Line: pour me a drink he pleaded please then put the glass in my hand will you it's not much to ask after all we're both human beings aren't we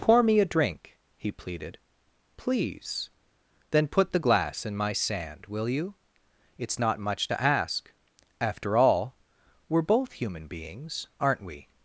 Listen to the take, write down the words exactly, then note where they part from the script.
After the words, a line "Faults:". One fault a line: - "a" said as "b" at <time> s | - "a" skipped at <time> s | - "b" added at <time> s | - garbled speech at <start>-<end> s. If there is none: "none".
pour me a drink he pleaded please then put the glass in my sand will you it's not much to ask after all we're both human beings aren't we
Faults:
- "hand" said as "sand" at 4.9 s